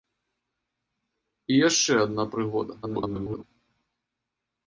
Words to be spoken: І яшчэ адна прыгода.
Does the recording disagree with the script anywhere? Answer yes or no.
yes